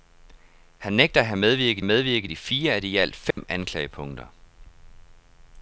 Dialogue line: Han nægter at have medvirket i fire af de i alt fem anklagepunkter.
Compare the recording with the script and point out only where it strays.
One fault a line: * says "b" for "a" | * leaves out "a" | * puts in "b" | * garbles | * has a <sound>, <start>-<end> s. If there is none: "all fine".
* puts in "medvirket"
* has a dropout, 3.3-3.4 s